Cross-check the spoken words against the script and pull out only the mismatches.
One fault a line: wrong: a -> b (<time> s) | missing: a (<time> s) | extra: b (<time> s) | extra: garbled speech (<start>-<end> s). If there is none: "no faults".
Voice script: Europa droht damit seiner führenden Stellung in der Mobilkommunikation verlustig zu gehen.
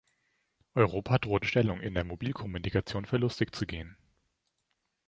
missing: damit seiner führenden (1.4 s)